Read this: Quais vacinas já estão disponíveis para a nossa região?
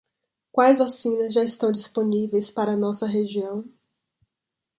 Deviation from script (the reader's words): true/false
false